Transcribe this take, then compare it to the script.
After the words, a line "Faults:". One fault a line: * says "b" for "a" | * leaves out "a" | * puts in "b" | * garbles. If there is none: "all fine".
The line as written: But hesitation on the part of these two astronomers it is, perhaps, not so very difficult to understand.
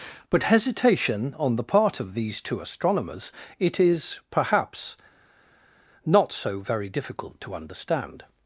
But hesitation on the part of these two astronomers it is, perhaps, not so very difficult to understand.
Faults:
all fine